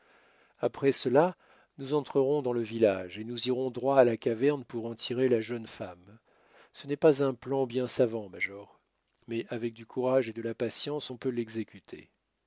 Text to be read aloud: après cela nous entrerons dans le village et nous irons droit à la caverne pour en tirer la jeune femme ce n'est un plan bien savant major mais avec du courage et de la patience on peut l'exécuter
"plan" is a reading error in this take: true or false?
false